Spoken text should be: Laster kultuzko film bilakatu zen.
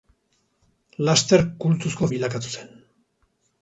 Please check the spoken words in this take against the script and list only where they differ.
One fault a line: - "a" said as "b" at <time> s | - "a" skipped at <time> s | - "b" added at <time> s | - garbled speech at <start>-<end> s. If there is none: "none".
- "film" skipped at 2.1 s